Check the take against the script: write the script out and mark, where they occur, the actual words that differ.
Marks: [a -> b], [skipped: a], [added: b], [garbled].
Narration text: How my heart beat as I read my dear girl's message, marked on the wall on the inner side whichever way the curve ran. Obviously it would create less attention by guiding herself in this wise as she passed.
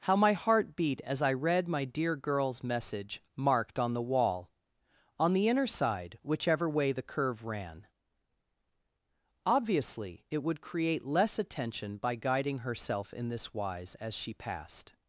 How my heart beat as I read my dear girl's message, marked on the wall on the inner side whichever way the curve ran. Obviously it would create less attention by guiding herself in this wise as she passed.